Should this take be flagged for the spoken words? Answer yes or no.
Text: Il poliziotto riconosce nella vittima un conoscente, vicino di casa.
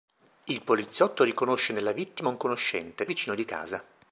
no